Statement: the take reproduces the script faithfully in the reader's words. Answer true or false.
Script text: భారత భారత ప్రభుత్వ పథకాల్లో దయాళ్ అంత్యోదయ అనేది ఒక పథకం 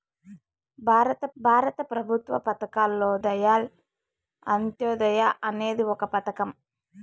true